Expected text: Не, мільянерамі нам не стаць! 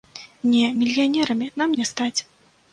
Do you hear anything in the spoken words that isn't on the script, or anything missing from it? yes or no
no